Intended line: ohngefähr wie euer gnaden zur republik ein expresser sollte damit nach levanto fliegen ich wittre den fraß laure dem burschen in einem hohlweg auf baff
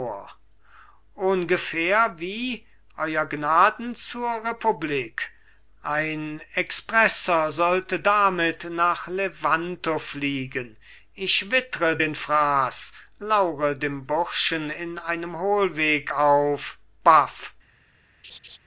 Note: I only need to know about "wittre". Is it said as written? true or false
true